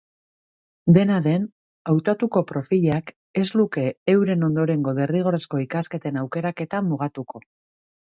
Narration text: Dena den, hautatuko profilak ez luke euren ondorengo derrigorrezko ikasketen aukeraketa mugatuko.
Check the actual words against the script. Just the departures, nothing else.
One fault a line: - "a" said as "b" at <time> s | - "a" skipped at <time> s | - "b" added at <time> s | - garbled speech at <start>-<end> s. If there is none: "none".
none